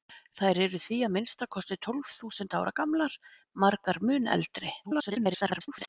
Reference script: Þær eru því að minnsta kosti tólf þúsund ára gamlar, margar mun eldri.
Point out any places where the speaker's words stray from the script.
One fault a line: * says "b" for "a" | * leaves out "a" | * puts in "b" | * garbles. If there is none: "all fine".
* garbles